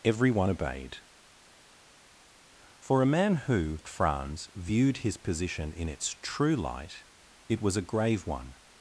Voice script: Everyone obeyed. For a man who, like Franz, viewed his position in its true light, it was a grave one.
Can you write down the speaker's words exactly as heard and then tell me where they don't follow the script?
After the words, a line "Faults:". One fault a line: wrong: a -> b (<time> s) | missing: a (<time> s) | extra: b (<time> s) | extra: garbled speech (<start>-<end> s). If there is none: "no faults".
Everyone obeyed. For a man who, Franz, viewed his position in its true light, it was a grave one.
Faults:
missing: like (3.8 s)